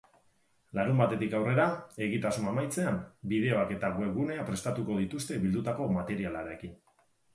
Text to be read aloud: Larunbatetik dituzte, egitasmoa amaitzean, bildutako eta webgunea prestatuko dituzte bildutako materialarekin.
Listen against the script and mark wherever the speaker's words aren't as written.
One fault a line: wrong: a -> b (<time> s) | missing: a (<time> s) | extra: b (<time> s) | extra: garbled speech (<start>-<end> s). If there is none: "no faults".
wrong: dituzte -> aurrera (1.4 s)
wrong: bildutako -> bideoak (3.3 s)